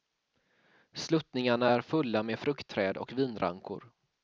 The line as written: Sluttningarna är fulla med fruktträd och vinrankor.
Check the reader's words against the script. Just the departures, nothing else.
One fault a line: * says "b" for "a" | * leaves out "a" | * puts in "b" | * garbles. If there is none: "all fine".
all fine